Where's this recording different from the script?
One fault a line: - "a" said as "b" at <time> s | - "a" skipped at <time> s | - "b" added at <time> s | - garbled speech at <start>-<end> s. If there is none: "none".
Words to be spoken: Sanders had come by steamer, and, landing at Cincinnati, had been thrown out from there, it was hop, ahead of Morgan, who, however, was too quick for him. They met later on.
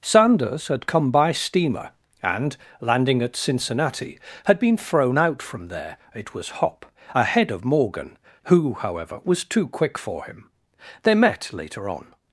none